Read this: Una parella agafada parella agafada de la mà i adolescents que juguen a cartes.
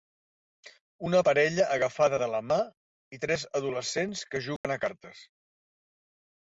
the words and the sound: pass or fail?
fail